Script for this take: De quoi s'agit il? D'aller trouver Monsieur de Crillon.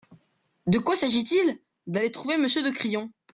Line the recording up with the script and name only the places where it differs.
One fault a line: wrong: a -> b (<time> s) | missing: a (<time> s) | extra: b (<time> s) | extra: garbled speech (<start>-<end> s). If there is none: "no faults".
no faults